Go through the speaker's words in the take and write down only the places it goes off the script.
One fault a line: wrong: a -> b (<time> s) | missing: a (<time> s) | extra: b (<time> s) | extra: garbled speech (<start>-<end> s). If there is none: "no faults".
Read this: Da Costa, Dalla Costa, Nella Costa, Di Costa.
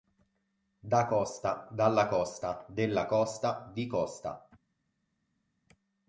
wrong: Nella -> Della (2.7 s)